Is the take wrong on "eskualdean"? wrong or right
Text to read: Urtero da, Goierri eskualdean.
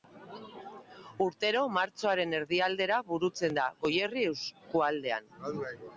right